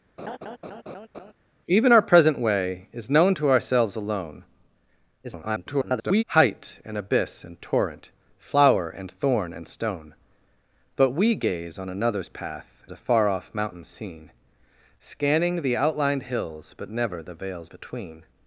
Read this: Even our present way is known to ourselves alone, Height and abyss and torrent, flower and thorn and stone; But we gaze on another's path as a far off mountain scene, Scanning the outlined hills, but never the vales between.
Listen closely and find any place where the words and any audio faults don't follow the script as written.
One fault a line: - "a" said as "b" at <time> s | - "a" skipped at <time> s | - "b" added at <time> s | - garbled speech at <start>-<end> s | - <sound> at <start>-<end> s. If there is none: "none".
- laugh at 0.2-1.3 s
- garbled speech at 5.2-6.2 s
- "as" skipped at 12.9 s